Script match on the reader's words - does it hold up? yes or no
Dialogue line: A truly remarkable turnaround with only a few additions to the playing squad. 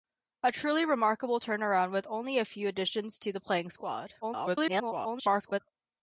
no